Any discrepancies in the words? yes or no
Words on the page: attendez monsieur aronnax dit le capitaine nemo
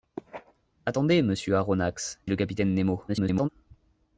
yes